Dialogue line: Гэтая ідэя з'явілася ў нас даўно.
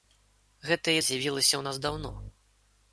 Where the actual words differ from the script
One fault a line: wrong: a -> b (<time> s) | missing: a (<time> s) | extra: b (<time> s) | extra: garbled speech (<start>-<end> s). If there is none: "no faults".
missing: ідэя (0.9 s)